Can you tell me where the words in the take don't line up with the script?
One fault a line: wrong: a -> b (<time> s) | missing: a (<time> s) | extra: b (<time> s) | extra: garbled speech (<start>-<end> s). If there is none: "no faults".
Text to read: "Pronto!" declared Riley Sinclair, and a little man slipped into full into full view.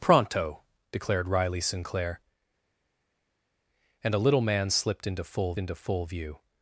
no faults